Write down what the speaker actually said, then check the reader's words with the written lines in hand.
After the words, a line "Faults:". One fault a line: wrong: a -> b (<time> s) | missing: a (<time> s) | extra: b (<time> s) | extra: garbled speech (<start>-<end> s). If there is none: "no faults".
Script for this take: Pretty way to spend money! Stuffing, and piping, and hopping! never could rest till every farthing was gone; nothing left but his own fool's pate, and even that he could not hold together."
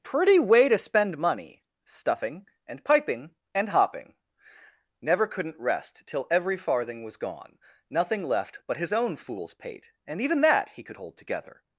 Pretty way to spend money! Stuffing, and piping, and hopping! never couldn't rest till every farthing was gone; nothing left but his own fool's pate, and even that he could hold together."
Faults:
wrong: could -> couldn't (5.3 s)
missing: not (11.0 s)